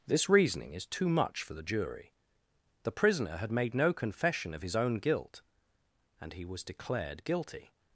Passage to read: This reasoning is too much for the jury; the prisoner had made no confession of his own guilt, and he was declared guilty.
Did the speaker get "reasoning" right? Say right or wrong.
right